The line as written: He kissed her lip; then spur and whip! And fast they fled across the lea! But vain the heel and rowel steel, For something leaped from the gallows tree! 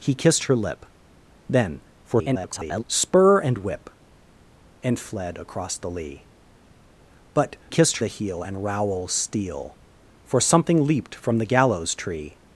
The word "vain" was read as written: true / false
false